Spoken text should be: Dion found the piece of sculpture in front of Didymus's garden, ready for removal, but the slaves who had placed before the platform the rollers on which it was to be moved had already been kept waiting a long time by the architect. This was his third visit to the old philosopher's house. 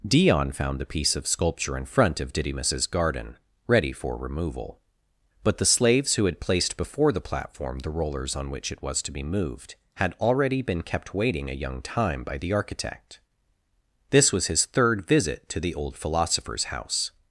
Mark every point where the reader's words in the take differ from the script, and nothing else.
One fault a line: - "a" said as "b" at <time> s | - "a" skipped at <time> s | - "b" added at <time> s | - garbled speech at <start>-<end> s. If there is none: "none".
- "long" said as "young" at 11.6 s